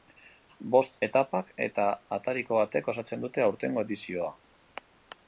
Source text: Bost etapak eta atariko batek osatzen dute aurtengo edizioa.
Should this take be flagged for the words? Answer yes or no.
no